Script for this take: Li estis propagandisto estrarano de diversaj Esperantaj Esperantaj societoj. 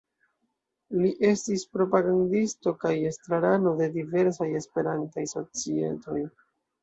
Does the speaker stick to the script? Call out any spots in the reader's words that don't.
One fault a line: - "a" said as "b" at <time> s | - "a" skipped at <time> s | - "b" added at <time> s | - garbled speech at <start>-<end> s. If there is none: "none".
- "kaj" added at 2.8 s
- "Esperantaj" skipped at 5.3 s